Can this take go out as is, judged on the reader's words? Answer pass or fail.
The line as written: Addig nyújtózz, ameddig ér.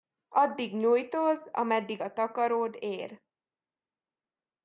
fail